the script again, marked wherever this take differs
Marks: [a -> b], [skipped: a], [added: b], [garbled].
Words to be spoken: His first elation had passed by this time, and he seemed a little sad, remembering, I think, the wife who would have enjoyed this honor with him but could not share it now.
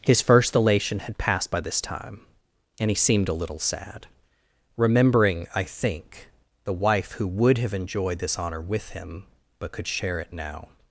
His first elation had passed by this time, and he seemed a little sad, remembering, I think, the wife who would have enjoyed this honor with him but could [skipped: not] share it now.